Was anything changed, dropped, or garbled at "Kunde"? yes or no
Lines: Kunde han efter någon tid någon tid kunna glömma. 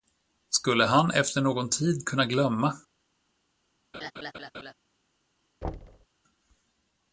yes